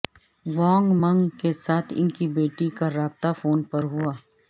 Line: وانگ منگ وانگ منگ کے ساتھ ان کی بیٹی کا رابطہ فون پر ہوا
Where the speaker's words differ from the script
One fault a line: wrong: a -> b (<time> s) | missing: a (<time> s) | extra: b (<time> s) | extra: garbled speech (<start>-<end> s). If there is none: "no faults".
missing: وانگ منگ (1.3 s)